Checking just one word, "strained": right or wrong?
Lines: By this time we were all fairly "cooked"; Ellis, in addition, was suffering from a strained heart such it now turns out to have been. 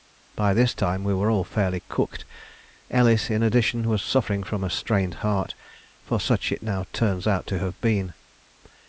right